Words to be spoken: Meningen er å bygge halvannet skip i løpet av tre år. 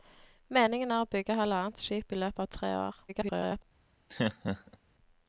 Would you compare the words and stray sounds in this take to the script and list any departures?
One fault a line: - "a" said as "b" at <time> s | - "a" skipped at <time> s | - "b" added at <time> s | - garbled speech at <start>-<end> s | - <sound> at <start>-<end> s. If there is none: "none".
- garbled speech at 3.1-3.6 s
- laugh at 4.1-4.8 s